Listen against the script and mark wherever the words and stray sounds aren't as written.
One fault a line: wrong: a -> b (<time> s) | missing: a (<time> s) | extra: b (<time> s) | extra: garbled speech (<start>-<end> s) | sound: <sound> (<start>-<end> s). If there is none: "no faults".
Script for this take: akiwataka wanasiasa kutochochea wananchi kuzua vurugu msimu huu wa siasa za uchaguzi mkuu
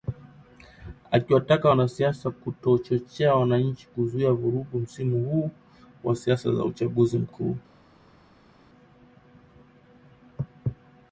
no faults